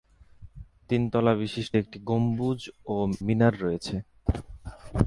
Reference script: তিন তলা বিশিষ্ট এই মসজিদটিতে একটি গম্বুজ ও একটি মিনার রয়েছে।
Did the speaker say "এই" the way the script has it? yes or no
no